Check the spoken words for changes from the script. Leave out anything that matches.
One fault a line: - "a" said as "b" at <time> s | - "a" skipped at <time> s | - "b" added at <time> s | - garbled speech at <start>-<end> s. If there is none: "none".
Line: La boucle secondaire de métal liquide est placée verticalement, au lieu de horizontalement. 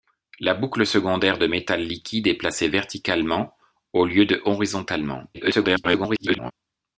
- garbled speech at 5.3-6.5 s